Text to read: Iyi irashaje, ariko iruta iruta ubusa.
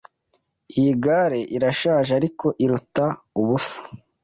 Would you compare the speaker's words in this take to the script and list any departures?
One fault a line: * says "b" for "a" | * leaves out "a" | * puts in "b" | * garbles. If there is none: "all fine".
* puts in "gare"
* leaves out "iruta"